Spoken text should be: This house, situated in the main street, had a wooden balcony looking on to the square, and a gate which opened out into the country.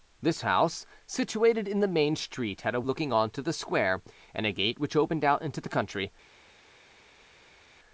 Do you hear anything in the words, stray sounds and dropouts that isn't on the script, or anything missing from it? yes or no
yes